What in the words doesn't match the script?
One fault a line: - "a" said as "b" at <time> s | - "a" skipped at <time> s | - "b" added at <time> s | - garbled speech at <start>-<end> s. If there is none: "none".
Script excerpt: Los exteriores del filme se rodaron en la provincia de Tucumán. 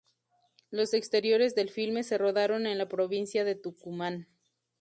none